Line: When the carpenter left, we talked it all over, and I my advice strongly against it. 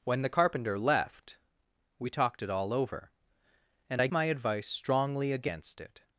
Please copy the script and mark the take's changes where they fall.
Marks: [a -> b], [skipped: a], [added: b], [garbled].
When the carpenter left, we talked it all over, and I my advice strongly against it.